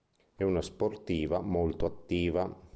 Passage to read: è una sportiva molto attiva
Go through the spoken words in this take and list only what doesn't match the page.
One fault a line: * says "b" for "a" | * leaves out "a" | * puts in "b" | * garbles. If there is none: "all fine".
all fine